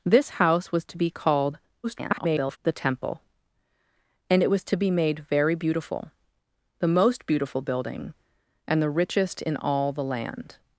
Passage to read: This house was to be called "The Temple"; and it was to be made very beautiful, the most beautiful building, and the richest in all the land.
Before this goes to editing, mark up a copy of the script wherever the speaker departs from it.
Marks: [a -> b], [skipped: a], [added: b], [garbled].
This house was to be called [garbled] "The Temple"; and it was to be made very beautiful, the most beautiful building, and the richest in all the land.